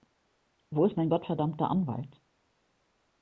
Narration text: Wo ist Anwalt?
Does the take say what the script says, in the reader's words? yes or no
no